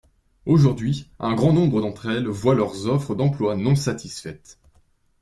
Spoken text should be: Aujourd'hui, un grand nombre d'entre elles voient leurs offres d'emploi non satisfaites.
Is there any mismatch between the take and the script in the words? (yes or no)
no